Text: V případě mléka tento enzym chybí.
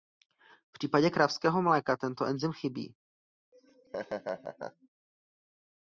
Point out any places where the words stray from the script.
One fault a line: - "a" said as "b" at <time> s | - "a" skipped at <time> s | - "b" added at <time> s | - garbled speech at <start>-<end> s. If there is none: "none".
- "kravského" added at 1.1 s